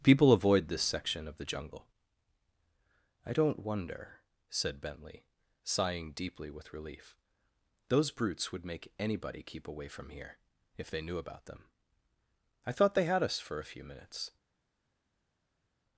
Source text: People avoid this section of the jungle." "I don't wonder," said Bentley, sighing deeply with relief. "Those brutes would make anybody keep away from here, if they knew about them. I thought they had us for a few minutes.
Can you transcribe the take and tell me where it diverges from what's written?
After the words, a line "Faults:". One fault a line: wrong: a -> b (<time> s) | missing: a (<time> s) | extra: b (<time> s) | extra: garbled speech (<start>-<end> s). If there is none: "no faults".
People avoid this section of the jungle." "I don't wonder," said Bentley, sighing deeply with relief. "Those brutes would make anybody keep away from here, if they knew about them. I thought they had us for a few minutes.
Faults:
no faults